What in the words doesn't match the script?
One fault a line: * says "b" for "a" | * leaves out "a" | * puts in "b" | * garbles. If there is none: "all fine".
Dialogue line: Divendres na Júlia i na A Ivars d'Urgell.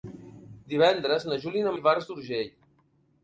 all fine